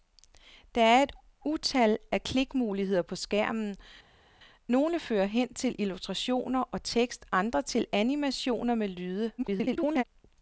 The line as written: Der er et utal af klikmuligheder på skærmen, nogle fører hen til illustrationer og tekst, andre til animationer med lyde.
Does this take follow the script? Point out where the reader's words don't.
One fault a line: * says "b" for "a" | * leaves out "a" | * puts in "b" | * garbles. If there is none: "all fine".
* garbles